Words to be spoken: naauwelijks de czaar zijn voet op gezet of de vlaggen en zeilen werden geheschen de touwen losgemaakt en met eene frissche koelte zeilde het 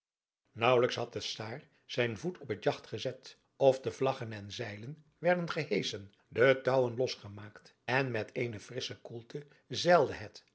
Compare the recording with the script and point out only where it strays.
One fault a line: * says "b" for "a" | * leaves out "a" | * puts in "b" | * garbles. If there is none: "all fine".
* puts in "had"
* puts in "het jagt"